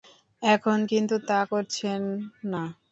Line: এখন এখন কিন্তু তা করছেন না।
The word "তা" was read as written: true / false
true